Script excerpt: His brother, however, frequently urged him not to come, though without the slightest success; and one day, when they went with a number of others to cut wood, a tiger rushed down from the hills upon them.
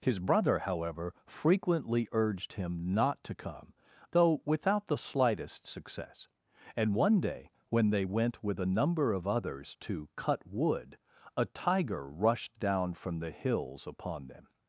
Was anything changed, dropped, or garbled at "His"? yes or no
no